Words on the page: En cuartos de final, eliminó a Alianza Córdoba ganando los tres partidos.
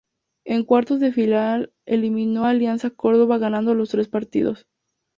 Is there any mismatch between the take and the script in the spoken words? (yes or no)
no